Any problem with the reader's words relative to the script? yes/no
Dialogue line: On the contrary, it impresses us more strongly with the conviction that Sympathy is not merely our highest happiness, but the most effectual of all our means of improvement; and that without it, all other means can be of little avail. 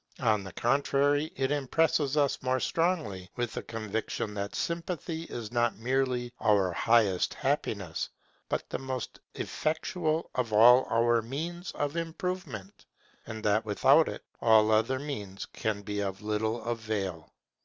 no